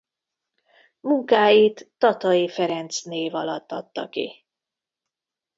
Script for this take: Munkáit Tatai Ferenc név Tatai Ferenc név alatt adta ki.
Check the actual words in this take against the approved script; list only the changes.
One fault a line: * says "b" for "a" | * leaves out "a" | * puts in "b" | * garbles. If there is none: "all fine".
* leaves out "Tatai Ferenc név"